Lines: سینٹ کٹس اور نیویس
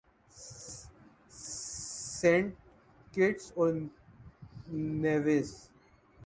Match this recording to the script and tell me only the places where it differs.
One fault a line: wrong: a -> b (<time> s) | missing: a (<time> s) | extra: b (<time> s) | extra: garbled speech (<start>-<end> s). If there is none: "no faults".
no faults